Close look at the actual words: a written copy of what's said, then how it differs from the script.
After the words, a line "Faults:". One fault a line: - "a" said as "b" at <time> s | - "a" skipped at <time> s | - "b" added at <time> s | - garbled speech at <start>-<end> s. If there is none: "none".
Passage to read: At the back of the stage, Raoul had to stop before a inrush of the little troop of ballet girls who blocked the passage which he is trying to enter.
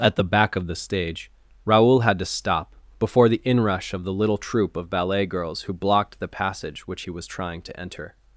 At the back of the stage, Raoul had to stop before the inrush of the little troop of ballet girls who blocked the passage which he was trying to enter.
Faults:
- "a" said as "the" at 3.3 s
- "is" said as "was" at 7.1 s